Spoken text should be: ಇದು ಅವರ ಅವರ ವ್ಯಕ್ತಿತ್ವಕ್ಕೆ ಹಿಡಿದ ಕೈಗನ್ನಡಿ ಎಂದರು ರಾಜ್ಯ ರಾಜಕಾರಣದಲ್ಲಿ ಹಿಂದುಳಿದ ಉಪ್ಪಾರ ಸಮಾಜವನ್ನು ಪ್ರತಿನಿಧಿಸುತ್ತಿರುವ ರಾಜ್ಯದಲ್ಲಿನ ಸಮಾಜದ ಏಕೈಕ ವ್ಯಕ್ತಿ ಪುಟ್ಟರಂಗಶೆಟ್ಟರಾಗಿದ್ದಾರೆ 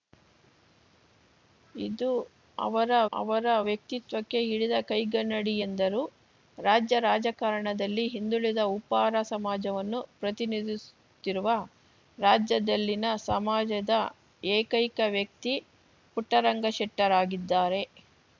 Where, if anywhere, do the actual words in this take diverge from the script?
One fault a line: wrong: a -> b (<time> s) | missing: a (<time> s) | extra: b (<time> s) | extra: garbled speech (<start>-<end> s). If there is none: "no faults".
no faults